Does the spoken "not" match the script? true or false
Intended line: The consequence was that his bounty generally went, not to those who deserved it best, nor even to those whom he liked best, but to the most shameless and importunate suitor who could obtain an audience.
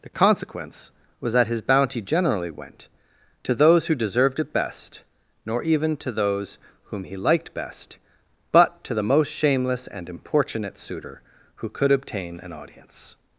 false